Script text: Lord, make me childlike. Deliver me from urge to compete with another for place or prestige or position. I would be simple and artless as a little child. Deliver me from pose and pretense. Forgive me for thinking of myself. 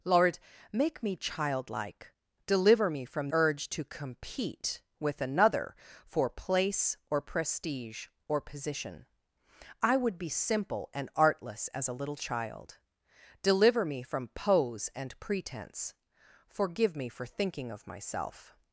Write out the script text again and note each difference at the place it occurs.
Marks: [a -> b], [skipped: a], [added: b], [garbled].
Lord, make me childlike. Deliver me from urge to compete with another for place or prestige or position. I would be simple and artless as a little child. Deliver me from pose and pretense. Forgive me for thinking of myself.